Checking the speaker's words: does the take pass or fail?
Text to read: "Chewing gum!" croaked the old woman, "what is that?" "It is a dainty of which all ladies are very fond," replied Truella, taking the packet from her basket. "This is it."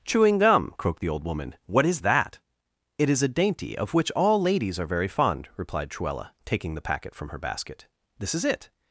pass